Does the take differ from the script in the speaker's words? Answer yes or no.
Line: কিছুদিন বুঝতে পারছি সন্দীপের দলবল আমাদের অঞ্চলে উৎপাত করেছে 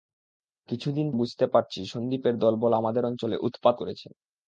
no